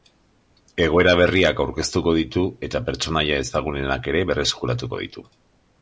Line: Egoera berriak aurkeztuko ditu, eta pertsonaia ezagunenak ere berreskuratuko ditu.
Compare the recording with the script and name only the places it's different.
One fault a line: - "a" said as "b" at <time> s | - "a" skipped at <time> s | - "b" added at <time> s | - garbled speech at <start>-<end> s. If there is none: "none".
none